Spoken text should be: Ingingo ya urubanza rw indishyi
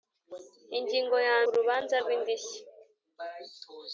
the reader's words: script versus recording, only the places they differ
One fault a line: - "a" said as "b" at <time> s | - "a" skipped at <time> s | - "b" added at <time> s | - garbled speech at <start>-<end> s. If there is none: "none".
none